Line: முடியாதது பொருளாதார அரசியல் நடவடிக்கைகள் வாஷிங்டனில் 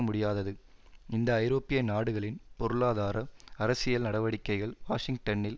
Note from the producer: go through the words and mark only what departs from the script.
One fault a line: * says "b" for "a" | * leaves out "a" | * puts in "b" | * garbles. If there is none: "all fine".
* puts in "இந்த ஐரோப்பிய நாடுகளின்"